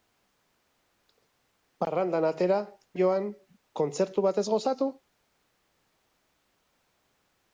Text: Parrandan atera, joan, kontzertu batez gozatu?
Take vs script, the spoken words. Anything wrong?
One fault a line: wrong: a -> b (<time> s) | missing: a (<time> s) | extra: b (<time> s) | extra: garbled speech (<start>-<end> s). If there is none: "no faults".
no faults